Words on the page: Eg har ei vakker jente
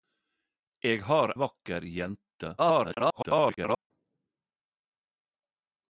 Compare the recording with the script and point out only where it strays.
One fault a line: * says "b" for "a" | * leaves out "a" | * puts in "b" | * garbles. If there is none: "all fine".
* leaves out "ei"
* garbles